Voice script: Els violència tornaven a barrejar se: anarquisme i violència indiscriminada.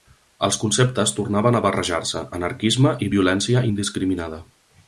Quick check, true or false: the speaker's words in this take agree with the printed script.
false